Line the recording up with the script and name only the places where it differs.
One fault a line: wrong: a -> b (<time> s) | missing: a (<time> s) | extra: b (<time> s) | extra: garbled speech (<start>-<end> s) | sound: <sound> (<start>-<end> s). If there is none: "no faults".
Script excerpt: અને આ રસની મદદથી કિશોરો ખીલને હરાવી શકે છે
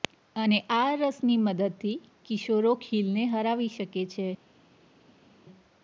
no faults